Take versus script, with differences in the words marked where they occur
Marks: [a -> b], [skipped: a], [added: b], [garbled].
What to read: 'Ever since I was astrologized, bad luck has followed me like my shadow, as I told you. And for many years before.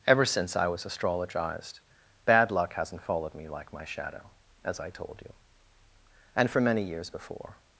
'Ever since I was astrologized, bad luck [has -> hasn't] followed me like my shadow, as I told you. And for many years before.